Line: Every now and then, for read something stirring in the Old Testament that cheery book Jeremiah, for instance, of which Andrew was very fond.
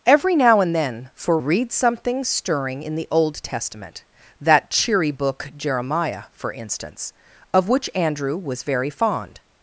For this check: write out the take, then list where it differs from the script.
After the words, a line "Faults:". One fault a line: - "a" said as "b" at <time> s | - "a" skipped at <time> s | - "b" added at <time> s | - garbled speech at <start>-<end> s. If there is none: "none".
Every now and then, for read something stirring in the Old Testament that cheery book Jeremiah, for instance, of which Andrew was very fond.
Faults:
none